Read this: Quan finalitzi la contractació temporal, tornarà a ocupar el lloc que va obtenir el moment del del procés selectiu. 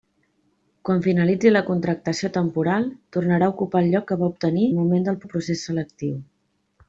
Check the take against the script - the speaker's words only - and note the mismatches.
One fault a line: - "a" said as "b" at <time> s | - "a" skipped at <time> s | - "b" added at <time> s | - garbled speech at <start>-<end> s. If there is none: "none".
none